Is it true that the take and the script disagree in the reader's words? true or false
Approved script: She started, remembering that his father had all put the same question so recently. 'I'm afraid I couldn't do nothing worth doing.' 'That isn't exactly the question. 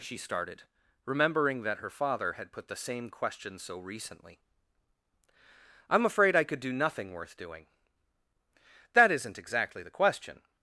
true